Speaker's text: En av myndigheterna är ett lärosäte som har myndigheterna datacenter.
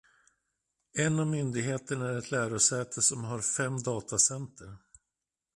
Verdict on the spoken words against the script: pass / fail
fail